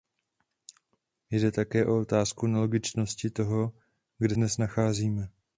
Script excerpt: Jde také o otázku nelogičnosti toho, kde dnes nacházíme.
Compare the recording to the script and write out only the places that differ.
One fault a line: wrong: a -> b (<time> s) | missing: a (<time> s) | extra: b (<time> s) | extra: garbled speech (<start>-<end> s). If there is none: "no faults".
no faults